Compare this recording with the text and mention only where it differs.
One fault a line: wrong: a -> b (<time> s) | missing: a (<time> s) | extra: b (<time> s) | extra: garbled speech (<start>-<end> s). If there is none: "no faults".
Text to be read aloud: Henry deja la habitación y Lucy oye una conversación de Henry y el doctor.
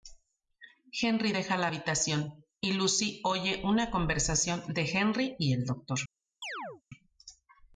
no faults